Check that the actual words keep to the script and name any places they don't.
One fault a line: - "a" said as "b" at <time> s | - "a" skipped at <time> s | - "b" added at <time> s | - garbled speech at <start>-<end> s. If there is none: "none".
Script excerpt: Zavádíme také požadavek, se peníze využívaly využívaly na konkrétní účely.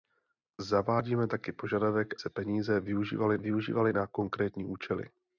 none